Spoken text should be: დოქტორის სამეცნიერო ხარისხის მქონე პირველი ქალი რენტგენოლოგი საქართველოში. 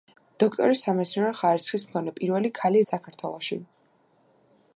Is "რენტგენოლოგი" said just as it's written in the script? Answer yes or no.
no